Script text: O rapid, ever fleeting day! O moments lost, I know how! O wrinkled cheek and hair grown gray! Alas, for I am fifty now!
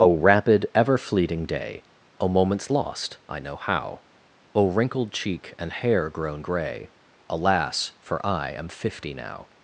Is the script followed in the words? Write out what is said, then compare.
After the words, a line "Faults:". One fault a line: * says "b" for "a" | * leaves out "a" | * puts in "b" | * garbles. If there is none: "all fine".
O rapid, ever fleeting day! O moments lost, I know how! O wrinkled cheek and hair grown gray! Alas, for I am fifty now!
Faults:
all fine